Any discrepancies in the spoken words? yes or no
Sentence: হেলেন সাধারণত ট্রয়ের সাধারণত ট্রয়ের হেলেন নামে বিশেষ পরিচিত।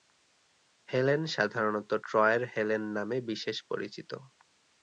yes